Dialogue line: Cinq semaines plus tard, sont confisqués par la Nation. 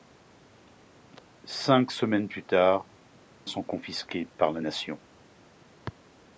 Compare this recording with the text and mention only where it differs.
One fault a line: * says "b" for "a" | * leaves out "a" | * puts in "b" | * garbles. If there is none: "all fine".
all fine